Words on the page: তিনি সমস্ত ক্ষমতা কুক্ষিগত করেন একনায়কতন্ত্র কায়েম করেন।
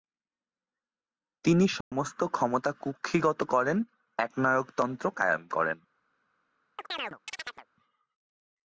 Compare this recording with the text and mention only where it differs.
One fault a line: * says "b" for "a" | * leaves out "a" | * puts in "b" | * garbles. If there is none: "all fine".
all fine